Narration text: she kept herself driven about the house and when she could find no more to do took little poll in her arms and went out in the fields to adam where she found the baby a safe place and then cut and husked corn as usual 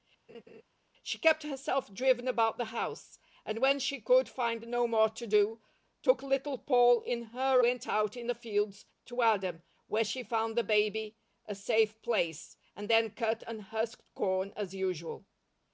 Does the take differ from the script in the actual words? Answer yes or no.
yes